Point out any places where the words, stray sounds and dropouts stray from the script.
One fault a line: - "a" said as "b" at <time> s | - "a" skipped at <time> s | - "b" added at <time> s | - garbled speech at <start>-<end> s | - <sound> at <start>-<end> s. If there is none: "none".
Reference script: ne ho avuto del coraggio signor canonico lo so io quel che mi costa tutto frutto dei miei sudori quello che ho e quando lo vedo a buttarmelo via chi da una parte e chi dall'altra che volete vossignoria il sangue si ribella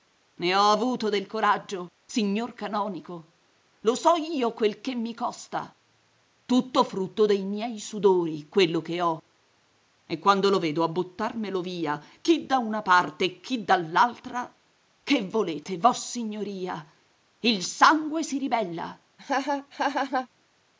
- laugh at 19.2-20.3 s